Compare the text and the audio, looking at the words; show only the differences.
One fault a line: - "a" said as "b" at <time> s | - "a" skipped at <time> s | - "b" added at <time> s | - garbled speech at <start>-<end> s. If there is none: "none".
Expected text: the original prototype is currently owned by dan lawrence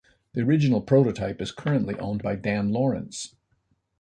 none